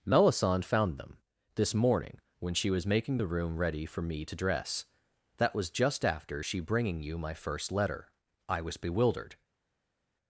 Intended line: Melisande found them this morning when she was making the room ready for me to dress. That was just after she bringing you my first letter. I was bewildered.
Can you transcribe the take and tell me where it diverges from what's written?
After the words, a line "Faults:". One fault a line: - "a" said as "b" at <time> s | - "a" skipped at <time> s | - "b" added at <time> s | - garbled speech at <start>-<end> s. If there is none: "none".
Melisande found them this morning when she was making the room ready for me to dress. That was just after she bringing you my first letter. I was bewildered.
Faults:
none